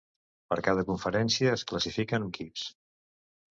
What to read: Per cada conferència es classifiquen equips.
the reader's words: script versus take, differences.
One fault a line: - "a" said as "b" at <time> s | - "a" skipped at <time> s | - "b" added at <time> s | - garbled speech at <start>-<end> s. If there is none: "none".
none